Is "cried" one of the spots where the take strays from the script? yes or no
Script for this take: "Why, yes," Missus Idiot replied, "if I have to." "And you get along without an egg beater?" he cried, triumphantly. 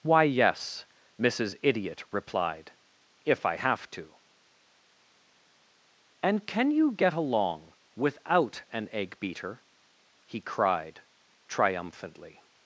no